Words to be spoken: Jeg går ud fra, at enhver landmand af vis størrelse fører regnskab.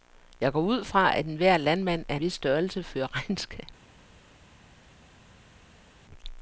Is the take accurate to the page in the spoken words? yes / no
yes